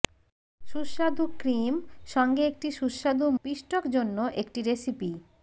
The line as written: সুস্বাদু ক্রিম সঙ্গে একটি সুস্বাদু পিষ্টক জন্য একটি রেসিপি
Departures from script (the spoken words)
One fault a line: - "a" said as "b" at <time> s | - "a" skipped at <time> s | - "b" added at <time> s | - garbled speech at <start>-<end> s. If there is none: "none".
none